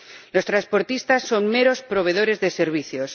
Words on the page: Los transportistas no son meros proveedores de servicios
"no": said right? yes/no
no